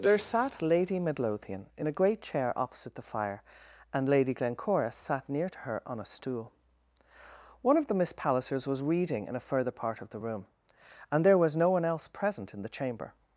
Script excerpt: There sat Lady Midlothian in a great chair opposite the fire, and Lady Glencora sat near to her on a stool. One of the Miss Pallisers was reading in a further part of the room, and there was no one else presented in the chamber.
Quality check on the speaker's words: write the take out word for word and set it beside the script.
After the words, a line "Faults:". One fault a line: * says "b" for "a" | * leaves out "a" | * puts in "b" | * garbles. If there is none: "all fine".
There sat Lady Midlothian in a great chair opposite the fire, and Lady Glencora sat near to her on a stool. One of the Miss Pallisers was reading in a further part of the room, and there was no one else present in the chamber.
Faults:
* says "present" for "presented"